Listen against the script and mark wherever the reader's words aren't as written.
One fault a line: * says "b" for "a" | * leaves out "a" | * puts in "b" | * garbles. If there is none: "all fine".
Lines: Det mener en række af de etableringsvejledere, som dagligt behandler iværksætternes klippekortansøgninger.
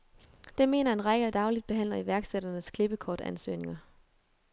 * leaves out "de etableringsvejledere som"